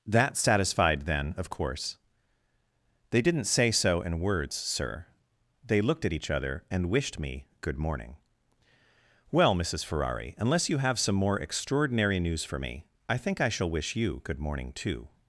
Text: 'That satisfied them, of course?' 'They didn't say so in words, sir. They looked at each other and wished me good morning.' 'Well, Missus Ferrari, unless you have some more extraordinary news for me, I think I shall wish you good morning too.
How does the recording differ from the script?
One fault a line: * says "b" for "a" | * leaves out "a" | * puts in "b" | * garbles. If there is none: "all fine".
* says "then" for "them"